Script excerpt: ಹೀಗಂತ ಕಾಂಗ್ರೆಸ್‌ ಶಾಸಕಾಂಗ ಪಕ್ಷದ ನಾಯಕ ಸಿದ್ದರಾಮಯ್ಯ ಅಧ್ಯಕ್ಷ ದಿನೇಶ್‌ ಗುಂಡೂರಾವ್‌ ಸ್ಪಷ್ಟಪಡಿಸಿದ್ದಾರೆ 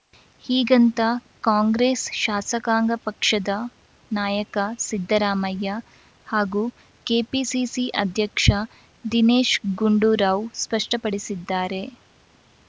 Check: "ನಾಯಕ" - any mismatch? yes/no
no